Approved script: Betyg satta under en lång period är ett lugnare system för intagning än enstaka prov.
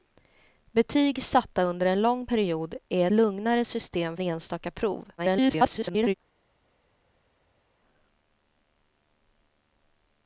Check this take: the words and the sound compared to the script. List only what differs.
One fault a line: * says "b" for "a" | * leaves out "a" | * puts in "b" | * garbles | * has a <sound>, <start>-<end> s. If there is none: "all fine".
* leaves out "ett"
* leaves out "för intagning än"
* garbles